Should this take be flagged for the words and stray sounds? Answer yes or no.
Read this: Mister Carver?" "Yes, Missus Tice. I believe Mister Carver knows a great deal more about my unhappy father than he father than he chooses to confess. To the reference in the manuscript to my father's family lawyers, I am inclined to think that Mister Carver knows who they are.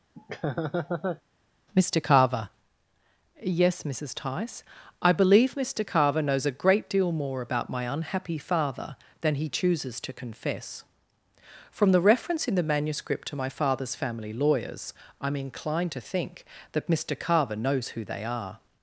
yes